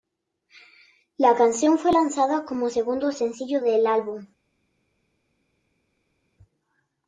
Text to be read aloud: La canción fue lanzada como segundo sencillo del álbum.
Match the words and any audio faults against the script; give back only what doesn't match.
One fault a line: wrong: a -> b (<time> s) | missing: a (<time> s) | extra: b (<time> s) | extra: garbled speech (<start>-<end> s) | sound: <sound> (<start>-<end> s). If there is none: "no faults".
no faults